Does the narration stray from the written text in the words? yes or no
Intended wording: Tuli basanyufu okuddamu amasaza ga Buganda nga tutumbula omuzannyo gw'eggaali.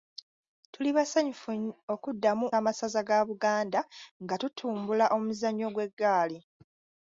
no